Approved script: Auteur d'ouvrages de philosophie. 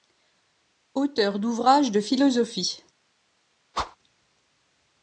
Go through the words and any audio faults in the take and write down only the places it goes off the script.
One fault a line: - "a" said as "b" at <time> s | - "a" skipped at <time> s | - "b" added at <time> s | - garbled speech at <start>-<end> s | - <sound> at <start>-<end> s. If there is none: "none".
- whoosh at 3.7-4.0 s